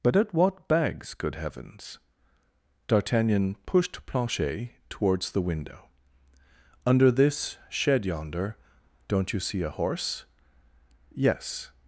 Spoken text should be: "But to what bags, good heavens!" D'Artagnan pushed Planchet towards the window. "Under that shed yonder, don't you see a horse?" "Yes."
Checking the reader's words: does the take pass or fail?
fail